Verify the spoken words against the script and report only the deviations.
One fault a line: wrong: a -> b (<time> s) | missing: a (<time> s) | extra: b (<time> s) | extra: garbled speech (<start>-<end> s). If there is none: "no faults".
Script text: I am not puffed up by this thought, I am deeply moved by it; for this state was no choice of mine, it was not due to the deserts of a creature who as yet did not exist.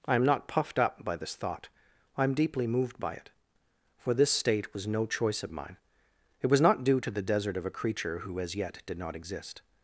wrong: deserts -> desert (7.2 s)